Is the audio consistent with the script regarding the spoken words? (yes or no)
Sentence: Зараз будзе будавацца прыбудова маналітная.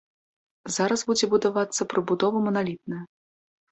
yes